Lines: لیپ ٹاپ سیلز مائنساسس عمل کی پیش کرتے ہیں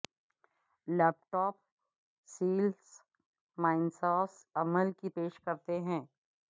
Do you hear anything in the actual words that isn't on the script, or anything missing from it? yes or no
no